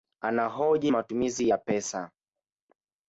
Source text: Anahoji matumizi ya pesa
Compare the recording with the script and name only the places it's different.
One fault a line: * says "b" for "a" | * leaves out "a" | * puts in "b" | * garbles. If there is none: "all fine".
all fine